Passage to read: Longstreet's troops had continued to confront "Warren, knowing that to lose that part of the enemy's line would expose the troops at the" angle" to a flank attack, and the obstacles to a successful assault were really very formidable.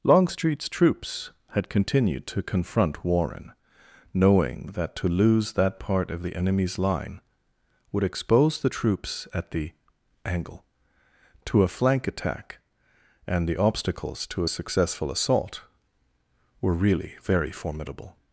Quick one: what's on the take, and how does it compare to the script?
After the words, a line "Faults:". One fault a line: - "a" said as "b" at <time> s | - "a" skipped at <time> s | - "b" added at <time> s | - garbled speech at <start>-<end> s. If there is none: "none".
Longstreet's troops had continued to confront "Warren, knowing that to lose that part of the enemy's line would expose the troops at the" angle" to a flank attack, and the obstacles to a successful assault were really very formidable.
Faults:
none